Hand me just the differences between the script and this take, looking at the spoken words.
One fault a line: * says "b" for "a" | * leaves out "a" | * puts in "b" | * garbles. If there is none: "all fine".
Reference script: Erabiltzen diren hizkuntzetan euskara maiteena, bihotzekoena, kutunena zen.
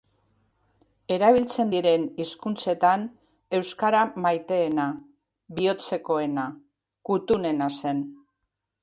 all fine